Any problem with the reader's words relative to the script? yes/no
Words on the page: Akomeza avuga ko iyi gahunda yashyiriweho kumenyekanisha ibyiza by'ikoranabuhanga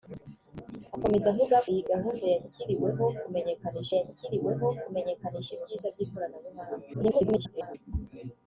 yes